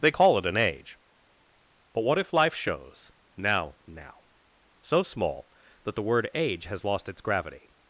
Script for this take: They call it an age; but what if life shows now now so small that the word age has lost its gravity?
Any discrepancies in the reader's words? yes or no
no